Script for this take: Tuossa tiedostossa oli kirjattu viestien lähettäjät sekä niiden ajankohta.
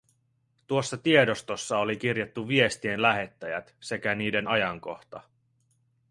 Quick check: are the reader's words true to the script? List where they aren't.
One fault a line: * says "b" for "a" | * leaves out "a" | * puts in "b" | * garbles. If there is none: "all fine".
all fine